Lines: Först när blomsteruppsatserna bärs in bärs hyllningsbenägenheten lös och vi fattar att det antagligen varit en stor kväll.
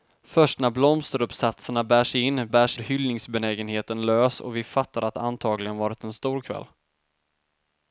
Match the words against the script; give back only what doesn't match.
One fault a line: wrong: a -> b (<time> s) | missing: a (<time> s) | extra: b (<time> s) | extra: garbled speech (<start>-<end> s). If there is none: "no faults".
no faults